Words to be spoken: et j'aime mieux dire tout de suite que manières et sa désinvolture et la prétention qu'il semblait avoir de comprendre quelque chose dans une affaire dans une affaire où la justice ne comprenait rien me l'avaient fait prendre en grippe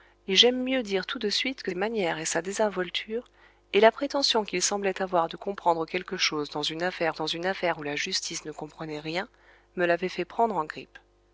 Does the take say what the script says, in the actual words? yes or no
yes